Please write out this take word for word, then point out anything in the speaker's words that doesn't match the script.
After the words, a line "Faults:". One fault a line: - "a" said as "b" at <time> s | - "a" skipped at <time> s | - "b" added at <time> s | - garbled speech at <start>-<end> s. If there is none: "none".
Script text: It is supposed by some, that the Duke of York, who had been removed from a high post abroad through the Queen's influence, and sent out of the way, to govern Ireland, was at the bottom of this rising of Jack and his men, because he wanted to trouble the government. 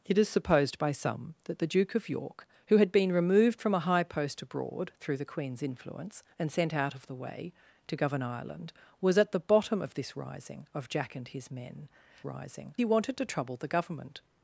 It is supposed by some, that the Duke of York, who had been removed from a high post abroad through the Queen's influence, and sent out of the way, to govern Ireland, was at the bottom of this rising of Jack and his men, rising he wanted to trouble the government.
Faults:
- "because" said as "rising" at 12.2 s